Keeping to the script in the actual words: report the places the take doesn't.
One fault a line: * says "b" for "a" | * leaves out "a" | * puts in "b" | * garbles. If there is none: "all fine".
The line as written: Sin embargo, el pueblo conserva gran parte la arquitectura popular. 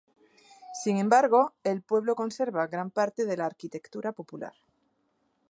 * puts in "de"